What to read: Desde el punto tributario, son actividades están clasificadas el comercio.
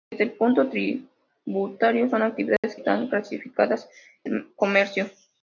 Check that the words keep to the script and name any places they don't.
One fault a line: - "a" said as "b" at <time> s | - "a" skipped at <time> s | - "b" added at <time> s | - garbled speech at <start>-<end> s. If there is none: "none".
none